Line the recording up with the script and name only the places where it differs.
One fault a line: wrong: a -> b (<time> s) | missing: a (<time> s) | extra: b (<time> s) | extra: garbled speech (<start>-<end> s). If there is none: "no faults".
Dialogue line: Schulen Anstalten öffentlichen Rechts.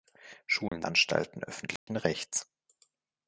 no faults